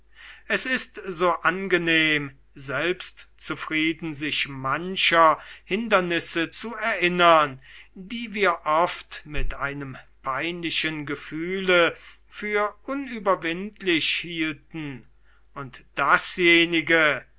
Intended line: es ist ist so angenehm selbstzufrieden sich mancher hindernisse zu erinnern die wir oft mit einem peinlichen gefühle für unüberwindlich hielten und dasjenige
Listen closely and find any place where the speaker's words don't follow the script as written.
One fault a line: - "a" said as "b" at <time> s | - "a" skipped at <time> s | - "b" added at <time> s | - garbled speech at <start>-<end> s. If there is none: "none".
- "ist" skipped at 1.0 s